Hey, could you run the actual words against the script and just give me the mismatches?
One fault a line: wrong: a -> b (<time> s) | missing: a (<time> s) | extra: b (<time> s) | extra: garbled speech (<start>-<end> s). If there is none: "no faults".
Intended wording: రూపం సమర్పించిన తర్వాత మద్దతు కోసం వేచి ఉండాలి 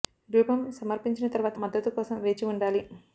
no faults